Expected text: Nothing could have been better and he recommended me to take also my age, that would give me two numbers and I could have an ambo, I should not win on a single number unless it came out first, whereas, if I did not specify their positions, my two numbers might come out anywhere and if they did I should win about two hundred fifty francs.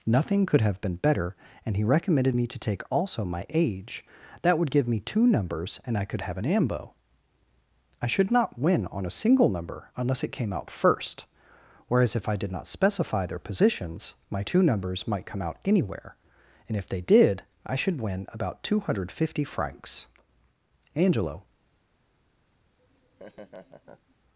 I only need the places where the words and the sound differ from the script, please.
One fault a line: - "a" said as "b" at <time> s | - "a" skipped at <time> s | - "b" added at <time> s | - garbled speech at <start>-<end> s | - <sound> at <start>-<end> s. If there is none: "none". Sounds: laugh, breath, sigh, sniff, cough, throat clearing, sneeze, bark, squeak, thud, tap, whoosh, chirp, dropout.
- "Angelo" added at 20.9 s
- laugh at 22.8-24.2 s